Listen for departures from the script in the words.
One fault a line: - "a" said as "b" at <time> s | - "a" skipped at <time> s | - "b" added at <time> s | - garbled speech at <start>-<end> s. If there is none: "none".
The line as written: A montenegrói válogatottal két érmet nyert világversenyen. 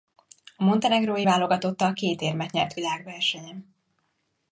none